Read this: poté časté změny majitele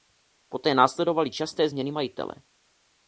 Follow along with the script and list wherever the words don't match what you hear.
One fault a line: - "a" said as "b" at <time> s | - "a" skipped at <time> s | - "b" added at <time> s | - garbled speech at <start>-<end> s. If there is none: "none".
- "následovaly" added at 0.7 s